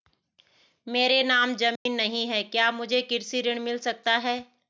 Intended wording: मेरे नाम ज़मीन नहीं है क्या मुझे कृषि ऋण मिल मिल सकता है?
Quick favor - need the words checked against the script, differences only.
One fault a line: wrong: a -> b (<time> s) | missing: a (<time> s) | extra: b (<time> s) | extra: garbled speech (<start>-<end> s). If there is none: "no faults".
missing: मिल (3.8 s)